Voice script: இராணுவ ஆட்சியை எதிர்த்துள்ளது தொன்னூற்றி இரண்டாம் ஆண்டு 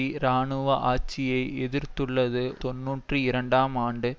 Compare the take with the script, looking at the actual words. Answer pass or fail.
pass